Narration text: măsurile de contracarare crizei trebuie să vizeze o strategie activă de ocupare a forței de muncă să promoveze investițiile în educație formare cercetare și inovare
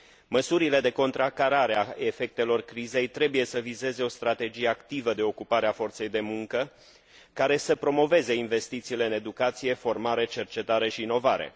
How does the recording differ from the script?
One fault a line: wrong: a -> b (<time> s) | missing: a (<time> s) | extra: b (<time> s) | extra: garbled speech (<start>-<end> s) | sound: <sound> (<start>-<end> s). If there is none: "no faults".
extra: a efectelor (1.8 s)
extra: care (7.3 s)